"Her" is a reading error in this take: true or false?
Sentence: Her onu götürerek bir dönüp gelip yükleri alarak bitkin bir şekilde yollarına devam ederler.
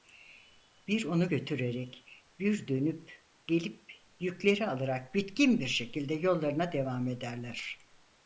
true